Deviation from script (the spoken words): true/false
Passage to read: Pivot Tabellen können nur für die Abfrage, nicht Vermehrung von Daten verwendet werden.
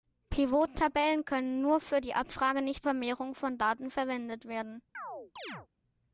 false